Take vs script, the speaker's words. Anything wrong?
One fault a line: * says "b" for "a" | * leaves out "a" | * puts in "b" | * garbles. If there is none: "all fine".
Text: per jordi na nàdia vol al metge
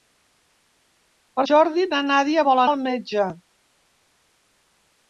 all fine